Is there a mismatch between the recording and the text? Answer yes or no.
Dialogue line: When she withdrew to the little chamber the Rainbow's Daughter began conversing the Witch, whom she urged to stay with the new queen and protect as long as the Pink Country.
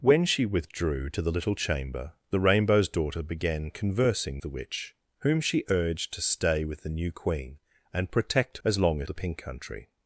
no